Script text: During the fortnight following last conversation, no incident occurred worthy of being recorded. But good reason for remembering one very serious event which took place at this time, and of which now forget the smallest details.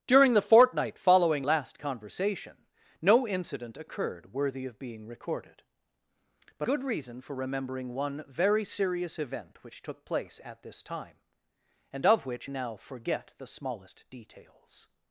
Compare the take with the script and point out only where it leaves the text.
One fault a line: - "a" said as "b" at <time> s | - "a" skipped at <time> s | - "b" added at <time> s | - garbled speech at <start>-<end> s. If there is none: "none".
none